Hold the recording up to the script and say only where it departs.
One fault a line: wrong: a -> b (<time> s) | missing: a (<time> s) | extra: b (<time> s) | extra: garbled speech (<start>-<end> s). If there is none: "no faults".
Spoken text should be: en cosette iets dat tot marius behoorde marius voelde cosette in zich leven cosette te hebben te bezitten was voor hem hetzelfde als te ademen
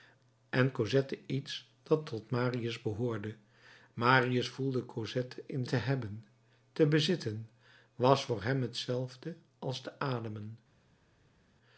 missing: zich leven cosette (5.7 s)